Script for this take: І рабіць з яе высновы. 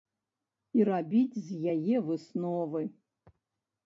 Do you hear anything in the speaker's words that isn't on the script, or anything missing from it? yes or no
no